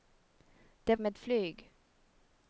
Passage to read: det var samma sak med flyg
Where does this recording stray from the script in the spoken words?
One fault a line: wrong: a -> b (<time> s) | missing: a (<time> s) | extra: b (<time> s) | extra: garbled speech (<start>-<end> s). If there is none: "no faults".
missing: var samma sak (0.9 s)